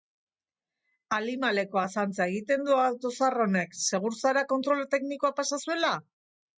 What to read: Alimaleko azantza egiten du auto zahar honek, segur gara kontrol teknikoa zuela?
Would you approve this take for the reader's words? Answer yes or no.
no